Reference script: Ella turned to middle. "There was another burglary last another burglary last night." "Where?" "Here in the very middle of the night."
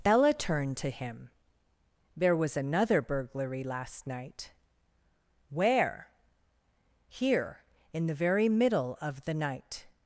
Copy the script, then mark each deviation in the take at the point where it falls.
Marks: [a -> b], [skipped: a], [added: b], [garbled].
Ella turned to [middle. -> him] "There was another burglary last [skipped: another burglary last] night." "Where?" "Here in the very middle of the night."